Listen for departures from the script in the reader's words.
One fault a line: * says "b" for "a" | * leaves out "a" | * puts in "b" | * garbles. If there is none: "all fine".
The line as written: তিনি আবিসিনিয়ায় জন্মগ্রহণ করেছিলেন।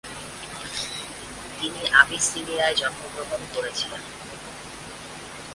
all fine